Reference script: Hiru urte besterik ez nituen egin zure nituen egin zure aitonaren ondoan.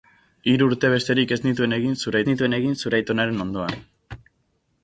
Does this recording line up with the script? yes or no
yes